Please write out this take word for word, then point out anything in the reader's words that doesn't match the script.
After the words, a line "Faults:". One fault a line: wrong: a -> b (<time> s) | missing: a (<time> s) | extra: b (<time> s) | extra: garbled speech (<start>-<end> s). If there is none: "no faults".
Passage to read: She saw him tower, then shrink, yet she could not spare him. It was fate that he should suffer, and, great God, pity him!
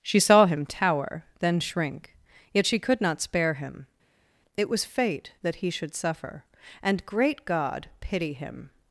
She saw him tower, then shrink, yet she could not spare him. It was fate that he should suffer, and, great God, pity him!
Faults:
no faults